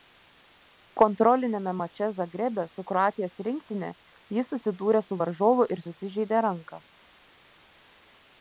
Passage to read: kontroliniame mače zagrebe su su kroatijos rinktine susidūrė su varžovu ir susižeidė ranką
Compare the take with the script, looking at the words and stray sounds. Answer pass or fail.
fail